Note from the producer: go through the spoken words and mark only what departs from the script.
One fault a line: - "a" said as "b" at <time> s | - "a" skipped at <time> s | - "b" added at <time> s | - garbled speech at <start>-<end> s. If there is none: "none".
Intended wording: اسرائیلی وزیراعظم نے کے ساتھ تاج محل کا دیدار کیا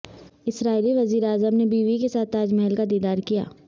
- "بیوی" added at 1.6 s